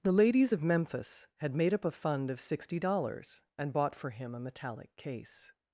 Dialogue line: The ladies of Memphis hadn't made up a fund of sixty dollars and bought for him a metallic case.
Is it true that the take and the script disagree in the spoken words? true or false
true